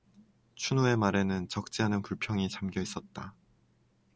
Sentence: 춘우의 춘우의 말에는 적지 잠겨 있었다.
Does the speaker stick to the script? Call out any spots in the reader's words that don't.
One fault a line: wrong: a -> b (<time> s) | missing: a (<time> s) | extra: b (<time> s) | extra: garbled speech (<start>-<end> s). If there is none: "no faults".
missing: 춘우의 (1.0 s)
extra: 않은 불평이 (1.8 s)